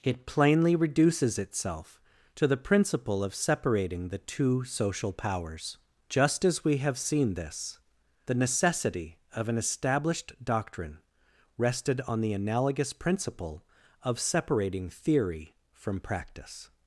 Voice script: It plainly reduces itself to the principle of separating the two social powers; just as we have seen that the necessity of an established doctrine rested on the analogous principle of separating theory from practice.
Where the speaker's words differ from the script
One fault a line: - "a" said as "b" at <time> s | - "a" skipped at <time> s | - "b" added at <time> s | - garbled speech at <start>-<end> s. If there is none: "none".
- "that" said as "this" at 7.3 s